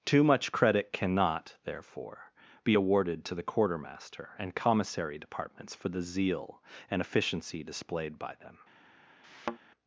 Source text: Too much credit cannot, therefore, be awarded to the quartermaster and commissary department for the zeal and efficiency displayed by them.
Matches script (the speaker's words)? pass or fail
fail